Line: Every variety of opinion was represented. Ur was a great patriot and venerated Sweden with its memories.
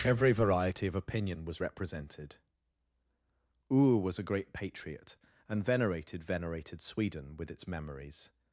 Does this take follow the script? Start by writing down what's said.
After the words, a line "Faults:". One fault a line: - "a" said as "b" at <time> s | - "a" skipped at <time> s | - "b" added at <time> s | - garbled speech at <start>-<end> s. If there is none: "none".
Every variety of opinion was represented. Ur was a great patriot and venerated venerated Sweden with its memories.
Faults:
- "venerated" added at 6.2 s